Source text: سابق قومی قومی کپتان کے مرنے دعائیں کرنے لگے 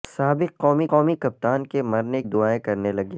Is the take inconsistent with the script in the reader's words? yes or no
no